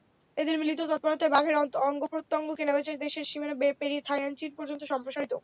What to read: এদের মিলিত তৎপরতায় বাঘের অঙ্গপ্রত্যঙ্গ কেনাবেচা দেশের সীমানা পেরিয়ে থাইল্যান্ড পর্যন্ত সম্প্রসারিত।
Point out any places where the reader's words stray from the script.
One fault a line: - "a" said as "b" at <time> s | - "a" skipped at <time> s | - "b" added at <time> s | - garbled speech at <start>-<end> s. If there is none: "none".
- "চীন" added at 4.4 s